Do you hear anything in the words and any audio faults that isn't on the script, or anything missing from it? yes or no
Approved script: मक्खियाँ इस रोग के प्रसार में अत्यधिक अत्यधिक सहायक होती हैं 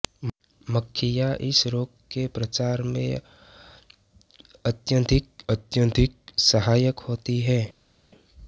no